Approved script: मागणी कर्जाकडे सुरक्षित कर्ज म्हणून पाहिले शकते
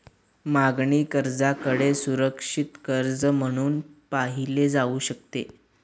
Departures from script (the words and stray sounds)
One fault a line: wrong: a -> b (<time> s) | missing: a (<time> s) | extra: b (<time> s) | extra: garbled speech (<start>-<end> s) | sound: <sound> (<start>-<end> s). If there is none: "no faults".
extra: जाऊ (4.7 s)